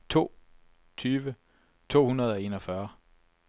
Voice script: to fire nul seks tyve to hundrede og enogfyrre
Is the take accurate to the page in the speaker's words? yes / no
no